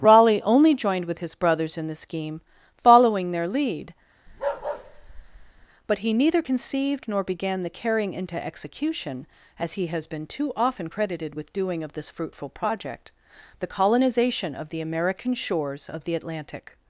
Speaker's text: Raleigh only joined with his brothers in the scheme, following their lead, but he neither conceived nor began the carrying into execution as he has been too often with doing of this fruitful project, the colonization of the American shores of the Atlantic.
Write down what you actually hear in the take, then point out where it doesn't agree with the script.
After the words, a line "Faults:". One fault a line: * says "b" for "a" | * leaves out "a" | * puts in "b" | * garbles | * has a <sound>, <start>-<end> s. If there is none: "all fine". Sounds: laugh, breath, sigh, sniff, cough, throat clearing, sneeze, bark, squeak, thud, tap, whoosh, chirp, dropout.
Raleigh only joined with his brothers in the scheme, following their lead, but he neither conceived nor began the carrying into execution as he has been too often credited with doing of this fruitful project, the colonization of the American shores of the Atlantic.
Faults:
* has a bark, 4.3-5.7 s
* puts in "credited"